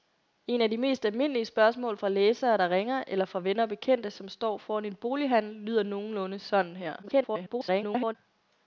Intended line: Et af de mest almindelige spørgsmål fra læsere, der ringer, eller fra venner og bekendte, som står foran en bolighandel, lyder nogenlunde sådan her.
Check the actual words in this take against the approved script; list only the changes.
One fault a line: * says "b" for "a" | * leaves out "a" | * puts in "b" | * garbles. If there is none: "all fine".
* garbles